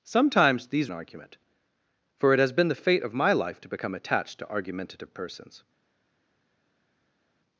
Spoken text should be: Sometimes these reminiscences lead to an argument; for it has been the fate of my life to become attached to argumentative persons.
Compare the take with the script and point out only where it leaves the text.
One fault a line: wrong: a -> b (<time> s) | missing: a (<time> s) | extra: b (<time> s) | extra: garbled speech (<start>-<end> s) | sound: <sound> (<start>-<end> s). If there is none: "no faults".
missing: reminiscences lead to (0.9 s)